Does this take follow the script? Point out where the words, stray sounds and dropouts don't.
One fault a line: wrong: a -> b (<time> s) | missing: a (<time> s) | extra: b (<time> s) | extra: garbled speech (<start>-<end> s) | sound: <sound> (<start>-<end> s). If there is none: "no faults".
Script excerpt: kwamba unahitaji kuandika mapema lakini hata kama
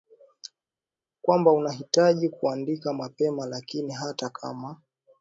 no faults